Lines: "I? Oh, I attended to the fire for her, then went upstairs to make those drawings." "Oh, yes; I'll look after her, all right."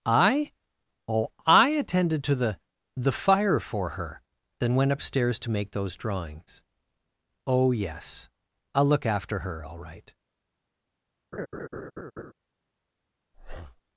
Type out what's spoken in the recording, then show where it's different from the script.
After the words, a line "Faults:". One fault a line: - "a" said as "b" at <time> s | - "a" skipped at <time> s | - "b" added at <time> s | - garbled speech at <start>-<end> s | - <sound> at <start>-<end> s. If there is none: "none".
"I? Oh, I attended to the the fire for her, then went upstairs to make those drawings." "Oh, yes; I'll look after her, all right."
Faults:
- "the" added at 3.0 s
- laugh at 11.3-12.3 s
- breath at 13.3-13.8 s